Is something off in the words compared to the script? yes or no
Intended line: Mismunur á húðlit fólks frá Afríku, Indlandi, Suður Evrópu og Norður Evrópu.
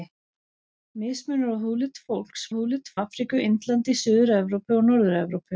yes